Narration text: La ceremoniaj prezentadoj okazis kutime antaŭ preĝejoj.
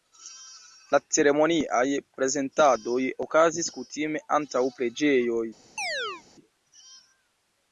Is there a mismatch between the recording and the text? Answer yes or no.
no